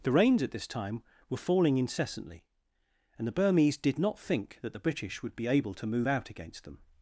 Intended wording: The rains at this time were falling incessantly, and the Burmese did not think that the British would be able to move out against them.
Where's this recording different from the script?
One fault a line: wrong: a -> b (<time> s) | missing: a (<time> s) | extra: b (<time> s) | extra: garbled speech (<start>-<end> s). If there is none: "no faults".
no faults